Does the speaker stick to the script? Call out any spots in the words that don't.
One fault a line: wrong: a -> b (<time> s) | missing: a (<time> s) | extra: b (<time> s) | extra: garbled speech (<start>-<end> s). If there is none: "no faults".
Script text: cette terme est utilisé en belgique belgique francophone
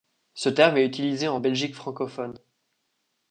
wrong: cette -> ce (0.3 s)
missing: belgique (1.7 s)